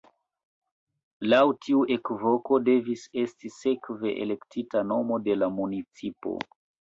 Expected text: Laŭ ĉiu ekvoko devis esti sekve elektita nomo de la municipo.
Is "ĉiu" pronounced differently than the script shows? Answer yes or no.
yes